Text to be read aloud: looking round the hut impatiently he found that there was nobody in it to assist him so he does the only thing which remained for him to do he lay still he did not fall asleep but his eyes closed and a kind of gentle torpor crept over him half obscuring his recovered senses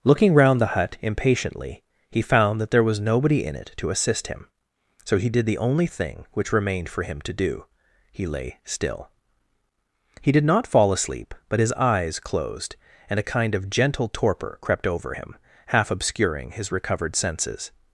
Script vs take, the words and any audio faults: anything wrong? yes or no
yes